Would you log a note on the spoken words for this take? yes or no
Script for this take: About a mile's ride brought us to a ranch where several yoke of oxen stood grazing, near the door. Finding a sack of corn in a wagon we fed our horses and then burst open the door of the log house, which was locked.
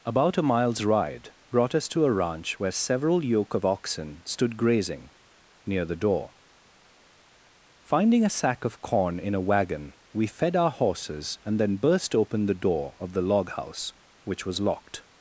no